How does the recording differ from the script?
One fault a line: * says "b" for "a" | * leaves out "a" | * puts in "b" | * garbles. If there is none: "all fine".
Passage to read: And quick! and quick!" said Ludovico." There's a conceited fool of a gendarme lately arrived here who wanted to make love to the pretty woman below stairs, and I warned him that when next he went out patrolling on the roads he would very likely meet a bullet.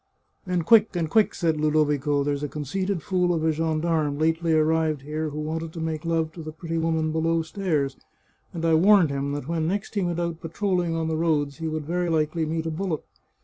all fine